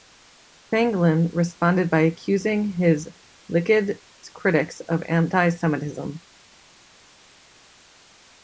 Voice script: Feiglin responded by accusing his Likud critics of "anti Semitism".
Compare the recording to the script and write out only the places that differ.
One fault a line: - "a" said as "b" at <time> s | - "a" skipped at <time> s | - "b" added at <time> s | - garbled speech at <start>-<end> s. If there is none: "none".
none